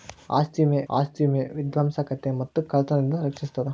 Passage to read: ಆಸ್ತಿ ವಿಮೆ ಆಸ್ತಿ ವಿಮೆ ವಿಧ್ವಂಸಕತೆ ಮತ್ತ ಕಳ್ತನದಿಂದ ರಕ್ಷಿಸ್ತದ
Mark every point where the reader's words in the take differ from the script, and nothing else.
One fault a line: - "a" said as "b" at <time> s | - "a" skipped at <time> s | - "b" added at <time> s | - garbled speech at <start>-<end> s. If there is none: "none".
none